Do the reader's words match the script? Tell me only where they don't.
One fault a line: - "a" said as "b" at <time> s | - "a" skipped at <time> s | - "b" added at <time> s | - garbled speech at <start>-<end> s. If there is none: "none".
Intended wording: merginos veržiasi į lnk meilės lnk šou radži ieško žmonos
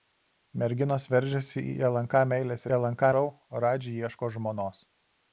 none